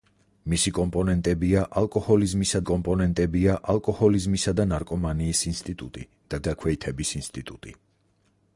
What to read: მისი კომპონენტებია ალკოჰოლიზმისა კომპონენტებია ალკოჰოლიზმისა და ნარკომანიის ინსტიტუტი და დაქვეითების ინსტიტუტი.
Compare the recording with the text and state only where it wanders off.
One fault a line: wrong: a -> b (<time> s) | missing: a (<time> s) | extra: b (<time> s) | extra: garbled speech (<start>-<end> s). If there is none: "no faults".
no faults